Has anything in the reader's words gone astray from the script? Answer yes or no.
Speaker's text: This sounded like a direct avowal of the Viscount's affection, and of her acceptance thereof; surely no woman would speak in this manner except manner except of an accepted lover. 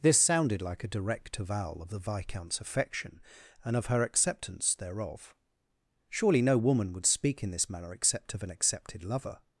yes